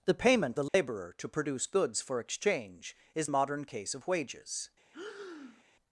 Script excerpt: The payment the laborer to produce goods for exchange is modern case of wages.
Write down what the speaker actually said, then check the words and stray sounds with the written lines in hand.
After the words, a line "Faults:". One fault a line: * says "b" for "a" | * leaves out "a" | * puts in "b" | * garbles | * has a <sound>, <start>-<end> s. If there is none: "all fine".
The payment the laborer to produce goods for exchange is modern case of wages.
Faults:
* has a dropout, 0.7-0.7 s
* has a breath, 4.9-5.6 s